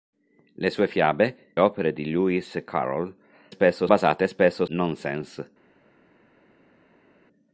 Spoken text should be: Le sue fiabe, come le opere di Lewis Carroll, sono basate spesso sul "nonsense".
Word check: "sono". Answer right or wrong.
wrong